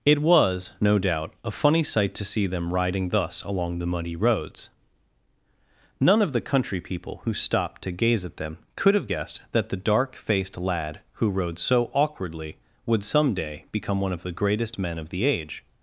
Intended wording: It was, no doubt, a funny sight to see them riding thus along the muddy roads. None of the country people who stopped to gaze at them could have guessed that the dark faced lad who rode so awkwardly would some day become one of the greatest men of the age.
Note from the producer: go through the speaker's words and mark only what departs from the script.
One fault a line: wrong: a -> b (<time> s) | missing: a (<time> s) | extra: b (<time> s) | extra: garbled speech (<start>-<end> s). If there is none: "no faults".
no faults